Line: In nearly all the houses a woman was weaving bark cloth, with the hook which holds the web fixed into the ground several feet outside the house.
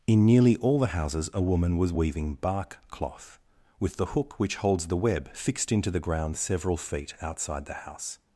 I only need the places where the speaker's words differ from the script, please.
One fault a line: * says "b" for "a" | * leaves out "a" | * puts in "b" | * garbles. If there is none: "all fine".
all fine